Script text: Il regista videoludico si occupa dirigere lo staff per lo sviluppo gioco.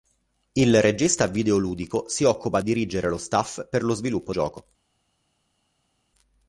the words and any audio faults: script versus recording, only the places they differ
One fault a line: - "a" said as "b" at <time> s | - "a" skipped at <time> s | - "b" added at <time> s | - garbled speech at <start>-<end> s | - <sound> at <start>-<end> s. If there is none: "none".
none